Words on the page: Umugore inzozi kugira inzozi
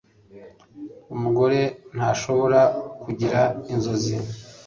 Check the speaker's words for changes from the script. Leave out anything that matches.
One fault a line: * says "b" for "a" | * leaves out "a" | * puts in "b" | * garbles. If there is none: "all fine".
* says "ntashobora" for "inzozi"